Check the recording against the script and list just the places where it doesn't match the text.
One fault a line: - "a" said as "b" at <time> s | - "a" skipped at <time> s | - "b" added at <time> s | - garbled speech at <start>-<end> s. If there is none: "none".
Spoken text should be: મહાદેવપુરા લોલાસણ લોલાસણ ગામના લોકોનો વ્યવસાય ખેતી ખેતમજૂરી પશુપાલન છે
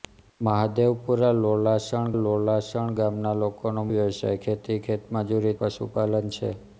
none